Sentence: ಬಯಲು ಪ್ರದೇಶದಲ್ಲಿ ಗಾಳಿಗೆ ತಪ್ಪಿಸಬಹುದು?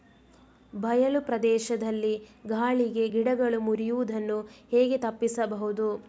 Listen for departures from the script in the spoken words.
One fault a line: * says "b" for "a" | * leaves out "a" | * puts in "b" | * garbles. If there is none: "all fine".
* puts in "ಗಿಡಗಳು ಮುರಿಯುದನ್ನು ಹೇಗೆ"